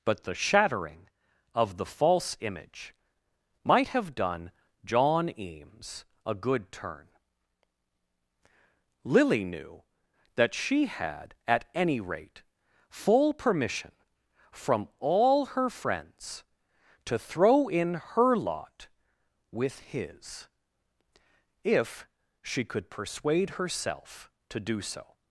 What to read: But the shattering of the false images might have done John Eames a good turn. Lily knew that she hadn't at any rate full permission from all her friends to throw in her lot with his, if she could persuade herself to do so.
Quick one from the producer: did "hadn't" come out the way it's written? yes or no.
no